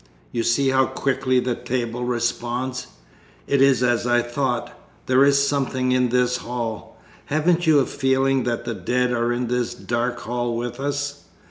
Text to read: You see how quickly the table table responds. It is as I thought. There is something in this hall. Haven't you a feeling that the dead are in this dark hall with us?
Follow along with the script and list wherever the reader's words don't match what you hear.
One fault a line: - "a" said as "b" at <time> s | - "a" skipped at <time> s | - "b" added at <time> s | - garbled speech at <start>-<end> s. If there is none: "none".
- "table" skipped at 2.0 s